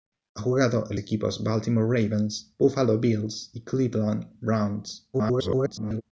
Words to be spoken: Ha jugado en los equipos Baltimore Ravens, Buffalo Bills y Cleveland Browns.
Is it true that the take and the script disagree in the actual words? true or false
true